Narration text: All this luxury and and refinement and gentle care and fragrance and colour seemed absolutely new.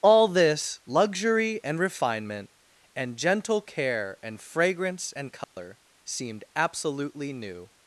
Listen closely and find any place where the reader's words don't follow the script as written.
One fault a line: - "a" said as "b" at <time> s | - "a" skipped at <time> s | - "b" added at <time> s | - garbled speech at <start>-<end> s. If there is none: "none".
- "and" skipped at 1.8 s